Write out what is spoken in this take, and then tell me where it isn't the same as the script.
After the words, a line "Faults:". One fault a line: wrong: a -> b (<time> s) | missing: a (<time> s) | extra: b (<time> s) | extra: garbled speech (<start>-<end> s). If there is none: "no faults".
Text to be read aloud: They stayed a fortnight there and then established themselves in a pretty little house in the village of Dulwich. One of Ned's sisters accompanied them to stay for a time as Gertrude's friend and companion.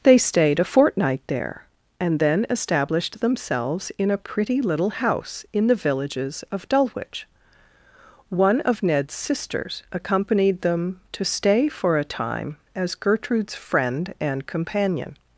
They stayed a fortnight there and then established themselves in a pretty little house in the villages of Dulwich. One of Ned's sisters accompanied them to stay for a time as Gertrude's friend and companion.
Faults:
wrong: village -> villages (5.8 s)